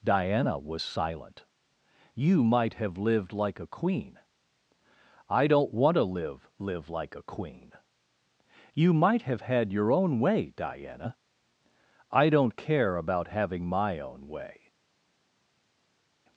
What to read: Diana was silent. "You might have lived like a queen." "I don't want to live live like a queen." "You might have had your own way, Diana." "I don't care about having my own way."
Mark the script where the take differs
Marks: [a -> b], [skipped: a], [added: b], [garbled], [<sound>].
Diana was silent. "You might have lived like a queen." "I don't want to live live like a queen." "You might have had your own way, Diana." "I don't care about having my own way."